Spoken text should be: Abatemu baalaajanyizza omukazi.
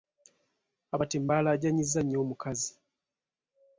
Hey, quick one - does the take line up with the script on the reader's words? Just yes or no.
no